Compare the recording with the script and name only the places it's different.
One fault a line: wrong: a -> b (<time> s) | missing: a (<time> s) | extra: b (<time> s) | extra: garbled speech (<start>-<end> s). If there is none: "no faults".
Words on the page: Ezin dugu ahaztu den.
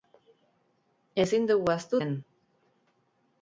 no faults